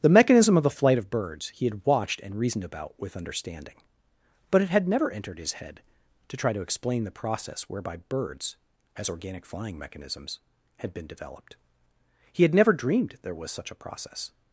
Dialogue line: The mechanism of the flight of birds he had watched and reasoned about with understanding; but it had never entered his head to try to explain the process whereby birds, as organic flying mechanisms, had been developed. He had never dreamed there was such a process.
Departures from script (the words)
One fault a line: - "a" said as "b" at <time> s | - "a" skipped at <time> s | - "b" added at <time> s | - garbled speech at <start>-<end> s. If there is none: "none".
none